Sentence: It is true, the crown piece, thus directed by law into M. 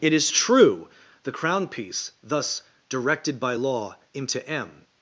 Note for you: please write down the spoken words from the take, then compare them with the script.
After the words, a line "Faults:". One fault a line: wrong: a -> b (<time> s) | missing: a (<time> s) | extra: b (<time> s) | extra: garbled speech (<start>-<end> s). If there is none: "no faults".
It is true, the crown piece, thus directed by law into M.
Faults:
no faults